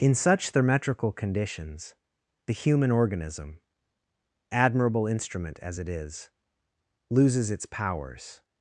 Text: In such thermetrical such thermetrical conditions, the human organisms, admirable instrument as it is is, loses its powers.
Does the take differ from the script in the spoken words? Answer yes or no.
yes